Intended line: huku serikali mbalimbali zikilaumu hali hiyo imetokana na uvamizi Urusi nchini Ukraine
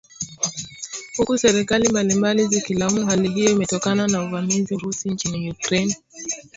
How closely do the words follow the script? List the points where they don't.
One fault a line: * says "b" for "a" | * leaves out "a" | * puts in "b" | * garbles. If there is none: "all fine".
all fine